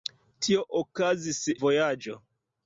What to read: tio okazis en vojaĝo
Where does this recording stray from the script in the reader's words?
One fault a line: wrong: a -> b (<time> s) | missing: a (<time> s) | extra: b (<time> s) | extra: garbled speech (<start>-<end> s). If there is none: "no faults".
missing: en (1.4 s)